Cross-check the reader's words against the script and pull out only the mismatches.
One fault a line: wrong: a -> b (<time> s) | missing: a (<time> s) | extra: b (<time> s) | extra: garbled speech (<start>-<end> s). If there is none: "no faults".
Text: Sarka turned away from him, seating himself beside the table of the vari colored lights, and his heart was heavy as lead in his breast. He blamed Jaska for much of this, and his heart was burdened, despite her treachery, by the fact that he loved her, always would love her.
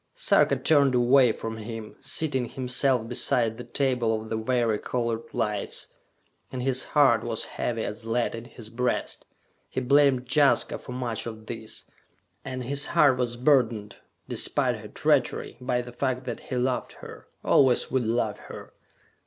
no faults